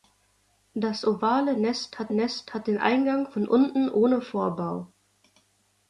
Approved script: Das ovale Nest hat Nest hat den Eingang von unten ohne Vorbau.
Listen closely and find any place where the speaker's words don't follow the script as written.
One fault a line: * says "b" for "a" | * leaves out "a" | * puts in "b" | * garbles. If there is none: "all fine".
all fine